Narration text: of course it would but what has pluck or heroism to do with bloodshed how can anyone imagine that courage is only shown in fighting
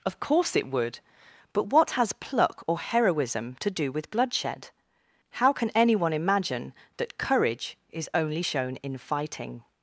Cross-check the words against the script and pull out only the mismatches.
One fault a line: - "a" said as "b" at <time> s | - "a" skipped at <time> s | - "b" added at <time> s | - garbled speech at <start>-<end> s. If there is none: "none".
none